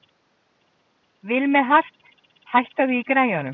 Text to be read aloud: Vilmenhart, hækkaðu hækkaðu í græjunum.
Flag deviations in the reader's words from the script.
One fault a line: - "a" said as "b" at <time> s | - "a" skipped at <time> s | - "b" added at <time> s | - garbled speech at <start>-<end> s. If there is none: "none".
- "hækkaðu" skipped at 3.0 s